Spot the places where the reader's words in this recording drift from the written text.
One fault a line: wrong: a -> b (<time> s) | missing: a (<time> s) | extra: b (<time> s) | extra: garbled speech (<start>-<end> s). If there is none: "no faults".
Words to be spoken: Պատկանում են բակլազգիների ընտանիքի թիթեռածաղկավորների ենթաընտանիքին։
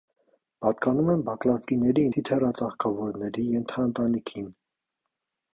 missing: ընտանիքի (2.0 s)